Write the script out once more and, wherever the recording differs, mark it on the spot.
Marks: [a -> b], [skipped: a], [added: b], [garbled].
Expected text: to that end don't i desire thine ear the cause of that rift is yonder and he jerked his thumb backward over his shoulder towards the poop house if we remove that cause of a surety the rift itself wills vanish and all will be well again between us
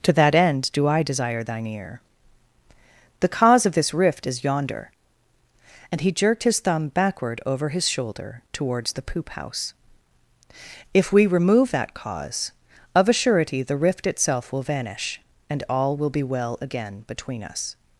to that end [don't -> do] i desire thine ear the cause of [that -> this] rift is yonder and he jerked his thumb backward over his shoulder towards the poop house if we remove that cause of a surety the rift itself [wills -> will] vanish and all will be well again between us